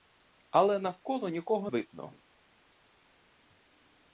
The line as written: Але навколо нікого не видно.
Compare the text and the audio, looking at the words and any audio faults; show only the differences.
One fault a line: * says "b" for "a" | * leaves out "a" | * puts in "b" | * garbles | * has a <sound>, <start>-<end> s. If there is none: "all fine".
* leaves out "не"